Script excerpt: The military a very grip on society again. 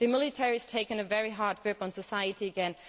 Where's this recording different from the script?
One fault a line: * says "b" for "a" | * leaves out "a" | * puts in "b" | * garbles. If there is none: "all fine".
* puts in "has taken"
* puts in "hard"